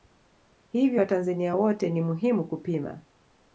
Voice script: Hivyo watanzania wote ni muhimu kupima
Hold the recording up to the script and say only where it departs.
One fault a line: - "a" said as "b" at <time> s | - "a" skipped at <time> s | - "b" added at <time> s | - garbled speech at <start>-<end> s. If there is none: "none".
none